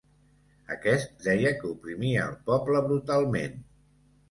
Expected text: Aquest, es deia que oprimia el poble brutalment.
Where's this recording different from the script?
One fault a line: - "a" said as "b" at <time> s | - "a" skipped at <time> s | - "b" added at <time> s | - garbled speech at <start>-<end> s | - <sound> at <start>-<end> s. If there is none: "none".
- "es" skipped at 1.1 s